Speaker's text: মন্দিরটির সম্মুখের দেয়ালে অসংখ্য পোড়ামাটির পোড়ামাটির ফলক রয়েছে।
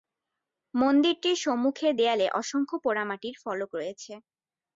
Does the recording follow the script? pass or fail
fail